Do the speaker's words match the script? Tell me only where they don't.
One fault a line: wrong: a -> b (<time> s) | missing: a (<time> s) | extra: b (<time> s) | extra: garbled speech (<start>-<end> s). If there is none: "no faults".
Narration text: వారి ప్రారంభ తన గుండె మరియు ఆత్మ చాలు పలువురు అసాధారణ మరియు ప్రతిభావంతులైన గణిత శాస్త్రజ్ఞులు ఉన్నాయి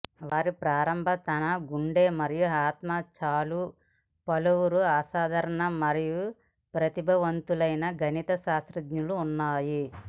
no faults